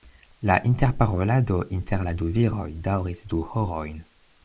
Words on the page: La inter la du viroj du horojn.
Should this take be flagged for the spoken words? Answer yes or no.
yes